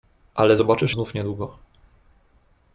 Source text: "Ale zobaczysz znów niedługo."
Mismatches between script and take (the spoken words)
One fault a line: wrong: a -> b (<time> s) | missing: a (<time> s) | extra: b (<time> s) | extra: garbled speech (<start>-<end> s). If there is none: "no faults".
no faults